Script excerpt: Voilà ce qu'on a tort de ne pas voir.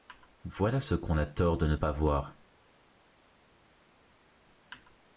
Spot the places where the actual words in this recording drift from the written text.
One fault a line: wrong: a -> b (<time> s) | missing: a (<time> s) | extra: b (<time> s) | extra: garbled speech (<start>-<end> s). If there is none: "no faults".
no faults